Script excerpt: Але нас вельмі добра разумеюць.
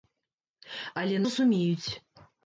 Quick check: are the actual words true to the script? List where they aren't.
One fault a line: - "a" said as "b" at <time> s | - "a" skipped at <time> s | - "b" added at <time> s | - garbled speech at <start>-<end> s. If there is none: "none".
- "нас вельмі добра" skipped at 1.2 s